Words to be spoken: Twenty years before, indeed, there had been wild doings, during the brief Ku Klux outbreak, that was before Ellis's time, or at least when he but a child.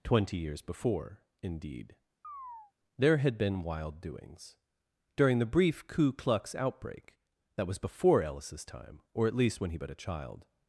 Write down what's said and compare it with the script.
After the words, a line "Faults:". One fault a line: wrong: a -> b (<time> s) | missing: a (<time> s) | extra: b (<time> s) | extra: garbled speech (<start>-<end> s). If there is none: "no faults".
Twenty years before, indeed, there had been wild doings, during the brief Ku Klux outbreak, that was before Ellis's time, or at least when he but a child.
Faults:
no faults